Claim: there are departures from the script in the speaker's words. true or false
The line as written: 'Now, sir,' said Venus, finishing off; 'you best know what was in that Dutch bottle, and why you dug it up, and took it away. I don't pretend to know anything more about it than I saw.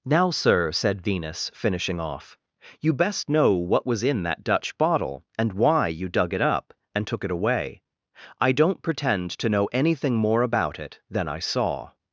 false